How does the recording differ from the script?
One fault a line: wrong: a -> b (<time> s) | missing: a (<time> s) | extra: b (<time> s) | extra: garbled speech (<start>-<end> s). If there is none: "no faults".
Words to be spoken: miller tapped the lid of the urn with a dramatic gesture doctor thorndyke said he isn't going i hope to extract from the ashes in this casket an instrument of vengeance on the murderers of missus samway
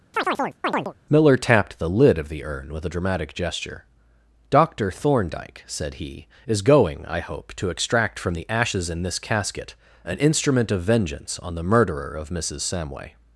wrong: isn't -> is (6.4 s)
wrong: murderers -> murderer (11.6 s)